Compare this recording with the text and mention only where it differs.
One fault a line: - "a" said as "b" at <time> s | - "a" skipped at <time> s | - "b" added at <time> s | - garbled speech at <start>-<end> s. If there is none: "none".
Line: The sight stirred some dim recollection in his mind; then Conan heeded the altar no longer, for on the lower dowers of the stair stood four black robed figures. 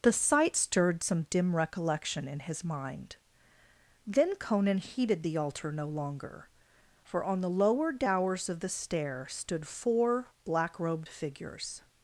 none